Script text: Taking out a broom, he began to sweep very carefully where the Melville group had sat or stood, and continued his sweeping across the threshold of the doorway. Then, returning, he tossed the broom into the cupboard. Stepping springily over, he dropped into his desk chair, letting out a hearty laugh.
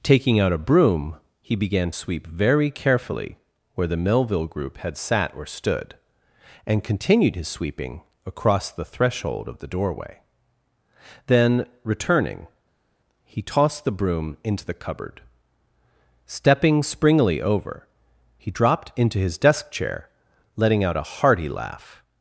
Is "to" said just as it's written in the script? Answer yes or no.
no